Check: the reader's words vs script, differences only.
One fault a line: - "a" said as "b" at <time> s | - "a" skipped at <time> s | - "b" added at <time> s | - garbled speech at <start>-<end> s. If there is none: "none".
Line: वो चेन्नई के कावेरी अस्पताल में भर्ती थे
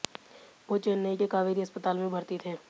none